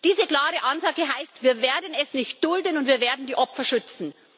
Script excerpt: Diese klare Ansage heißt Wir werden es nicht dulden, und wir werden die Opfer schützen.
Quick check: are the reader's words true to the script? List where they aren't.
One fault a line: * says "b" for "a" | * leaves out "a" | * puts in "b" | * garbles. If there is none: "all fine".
all fine